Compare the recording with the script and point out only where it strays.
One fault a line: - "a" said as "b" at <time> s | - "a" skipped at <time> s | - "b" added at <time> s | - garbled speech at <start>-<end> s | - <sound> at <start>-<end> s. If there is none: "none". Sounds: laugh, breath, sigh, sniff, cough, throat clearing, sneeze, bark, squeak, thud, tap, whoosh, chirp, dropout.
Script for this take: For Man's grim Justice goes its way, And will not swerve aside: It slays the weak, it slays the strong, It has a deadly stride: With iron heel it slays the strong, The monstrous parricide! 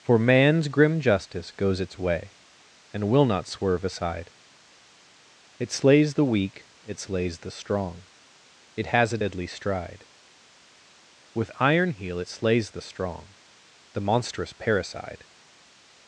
none